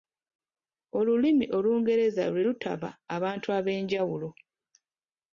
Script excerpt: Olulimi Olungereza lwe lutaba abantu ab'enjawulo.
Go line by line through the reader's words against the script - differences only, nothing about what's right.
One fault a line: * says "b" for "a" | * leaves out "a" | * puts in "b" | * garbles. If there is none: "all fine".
all fine